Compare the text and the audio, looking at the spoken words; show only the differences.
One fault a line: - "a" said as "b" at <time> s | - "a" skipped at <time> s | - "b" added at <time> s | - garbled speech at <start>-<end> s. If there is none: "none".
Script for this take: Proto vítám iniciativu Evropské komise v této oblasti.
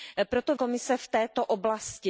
- "vítám iniciativu Evropské" skipped at 0.6 s